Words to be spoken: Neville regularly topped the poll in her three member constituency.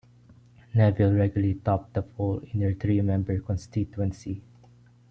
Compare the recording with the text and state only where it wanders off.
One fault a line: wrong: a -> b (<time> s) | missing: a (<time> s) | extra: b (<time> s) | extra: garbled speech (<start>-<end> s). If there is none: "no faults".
no faults